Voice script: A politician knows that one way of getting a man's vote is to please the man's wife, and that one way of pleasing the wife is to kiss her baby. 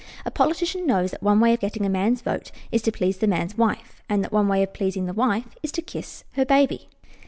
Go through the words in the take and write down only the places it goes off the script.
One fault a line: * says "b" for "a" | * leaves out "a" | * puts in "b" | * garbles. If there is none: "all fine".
all fine